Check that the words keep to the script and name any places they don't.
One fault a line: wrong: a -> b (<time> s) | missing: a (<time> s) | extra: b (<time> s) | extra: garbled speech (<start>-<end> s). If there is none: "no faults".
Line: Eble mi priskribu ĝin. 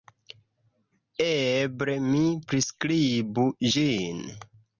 no faults